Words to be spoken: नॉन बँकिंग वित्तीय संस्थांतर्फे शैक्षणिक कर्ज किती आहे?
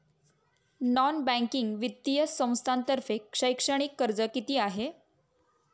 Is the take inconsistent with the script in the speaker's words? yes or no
no